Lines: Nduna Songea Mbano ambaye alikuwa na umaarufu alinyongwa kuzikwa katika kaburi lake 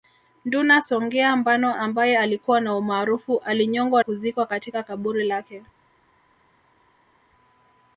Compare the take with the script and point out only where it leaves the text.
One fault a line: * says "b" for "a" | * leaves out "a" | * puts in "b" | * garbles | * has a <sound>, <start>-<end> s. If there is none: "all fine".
all fine